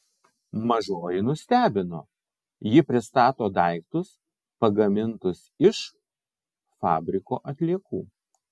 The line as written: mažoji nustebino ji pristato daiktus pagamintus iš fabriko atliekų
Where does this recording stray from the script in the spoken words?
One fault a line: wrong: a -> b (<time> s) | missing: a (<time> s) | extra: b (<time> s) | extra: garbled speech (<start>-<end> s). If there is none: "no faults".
no faults